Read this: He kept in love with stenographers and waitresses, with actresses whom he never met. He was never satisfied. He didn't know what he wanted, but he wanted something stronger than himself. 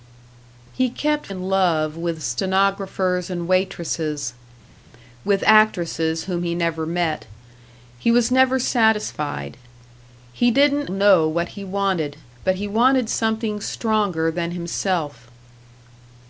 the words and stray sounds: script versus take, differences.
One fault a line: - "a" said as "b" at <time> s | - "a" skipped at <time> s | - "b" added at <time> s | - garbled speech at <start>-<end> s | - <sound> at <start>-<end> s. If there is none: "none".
none